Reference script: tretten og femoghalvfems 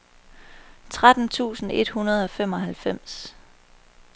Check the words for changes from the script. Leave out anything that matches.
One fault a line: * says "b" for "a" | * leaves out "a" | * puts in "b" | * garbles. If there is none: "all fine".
* puts in "tusind et hundrede"